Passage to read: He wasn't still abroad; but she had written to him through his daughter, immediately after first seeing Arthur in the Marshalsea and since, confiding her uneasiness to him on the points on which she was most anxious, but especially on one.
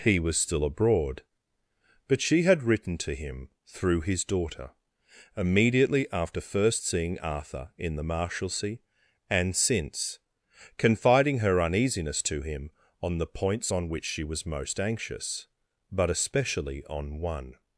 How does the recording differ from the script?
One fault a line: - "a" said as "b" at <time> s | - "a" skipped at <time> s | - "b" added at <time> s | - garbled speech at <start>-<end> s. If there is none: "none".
- "wasn't" said as "was" at 0.2 s